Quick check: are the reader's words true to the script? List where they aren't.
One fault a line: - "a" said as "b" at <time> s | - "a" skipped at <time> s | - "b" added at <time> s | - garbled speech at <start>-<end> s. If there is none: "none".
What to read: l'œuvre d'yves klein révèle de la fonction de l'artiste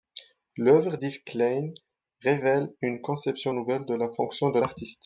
- "une conception nouvelle" added at 2.8 s